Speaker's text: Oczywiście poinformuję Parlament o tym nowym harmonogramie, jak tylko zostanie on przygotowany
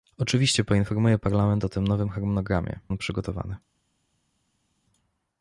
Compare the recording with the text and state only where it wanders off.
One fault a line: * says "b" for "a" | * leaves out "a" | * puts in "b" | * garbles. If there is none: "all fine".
* leaves out "jak tylko zostanie"